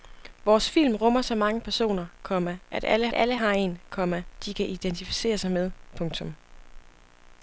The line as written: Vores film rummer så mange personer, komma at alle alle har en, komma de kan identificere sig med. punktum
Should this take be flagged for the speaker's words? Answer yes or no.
no